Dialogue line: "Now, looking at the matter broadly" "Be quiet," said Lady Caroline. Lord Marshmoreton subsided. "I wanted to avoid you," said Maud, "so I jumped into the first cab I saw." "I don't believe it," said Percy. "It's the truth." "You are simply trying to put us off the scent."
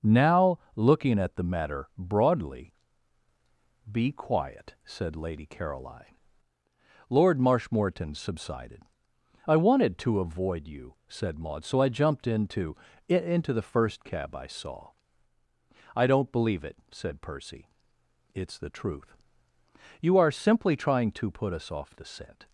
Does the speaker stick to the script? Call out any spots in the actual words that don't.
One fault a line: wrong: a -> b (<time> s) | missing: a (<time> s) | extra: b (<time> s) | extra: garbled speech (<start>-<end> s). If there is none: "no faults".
extra: into (13.1 s)